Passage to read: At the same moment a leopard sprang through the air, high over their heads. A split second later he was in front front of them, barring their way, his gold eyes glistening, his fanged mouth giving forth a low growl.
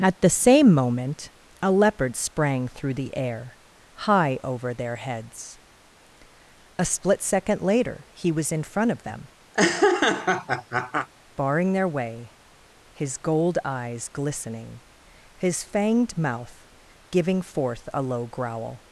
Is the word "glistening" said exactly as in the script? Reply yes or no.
yes